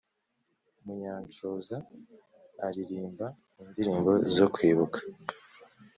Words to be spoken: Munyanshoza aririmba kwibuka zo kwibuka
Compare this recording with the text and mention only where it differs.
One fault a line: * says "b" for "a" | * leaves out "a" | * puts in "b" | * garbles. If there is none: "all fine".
* says "indirimbo" for "kwibuka"